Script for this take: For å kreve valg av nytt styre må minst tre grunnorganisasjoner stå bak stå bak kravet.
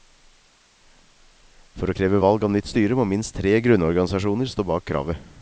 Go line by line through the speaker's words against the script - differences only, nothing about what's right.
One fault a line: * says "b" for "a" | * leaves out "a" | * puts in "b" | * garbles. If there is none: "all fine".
* leaves out "stå bak"